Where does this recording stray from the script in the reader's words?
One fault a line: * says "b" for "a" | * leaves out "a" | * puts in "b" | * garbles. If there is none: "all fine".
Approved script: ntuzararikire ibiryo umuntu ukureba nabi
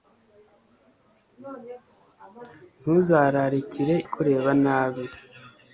* leaves out "ibiryo umuntu"